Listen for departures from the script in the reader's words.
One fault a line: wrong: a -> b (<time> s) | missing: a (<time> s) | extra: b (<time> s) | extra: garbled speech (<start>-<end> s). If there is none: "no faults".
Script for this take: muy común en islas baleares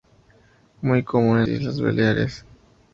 no faults